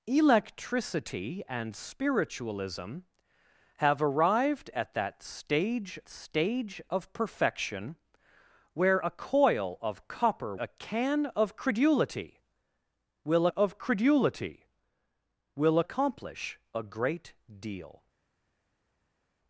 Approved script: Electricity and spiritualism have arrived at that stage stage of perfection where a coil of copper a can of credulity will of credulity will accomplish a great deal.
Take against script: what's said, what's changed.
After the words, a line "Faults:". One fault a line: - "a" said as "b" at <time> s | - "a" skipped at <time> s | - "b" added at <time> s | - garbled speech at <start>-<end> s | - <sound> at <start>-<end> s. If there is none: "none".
Electricity and spiritualism have arrived at that stage stage of perfection where a coil of copper a can of credulity will of credulity will accomplish a great deal.
Faults:
none